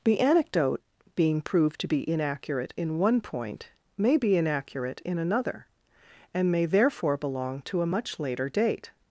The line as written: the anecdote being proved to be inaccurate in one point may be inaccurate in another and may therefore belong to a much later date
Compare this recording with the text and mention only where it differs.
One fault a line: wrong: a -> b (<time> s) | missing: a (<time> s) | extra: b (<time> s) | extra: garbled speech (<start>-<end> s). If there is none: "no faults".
no faults